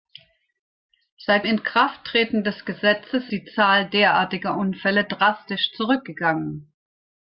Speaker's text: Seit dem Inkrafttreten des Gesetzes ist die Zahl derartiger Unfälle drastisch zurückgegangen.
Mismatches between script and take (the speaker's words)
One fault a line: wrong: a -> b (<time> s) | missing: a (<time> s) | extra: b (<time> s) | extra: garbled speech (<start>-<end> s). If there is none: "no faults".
missing: dem (1.4 s)
missing: ist (3.3 s)